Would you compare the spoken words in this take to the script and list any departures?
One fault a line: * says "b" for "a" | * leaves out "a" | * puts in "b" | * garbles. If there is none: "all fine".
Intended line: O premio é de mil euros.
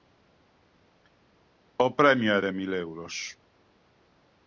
all fine